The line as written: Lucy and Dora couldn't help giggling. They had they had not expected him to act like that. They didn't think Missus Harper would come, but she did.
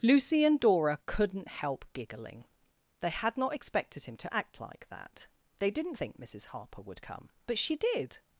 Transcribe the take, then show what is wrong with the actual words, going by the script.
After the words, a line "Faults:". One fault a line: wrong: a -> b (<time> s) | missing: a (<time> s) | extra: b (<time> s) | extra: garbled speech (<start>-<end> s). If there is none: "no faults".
Lucy and Dora couldn't help giggling. They had not expected him to act like that. They didn't think Missus Harper would come, but she did.
Faults:
missing: they had (3.4 s)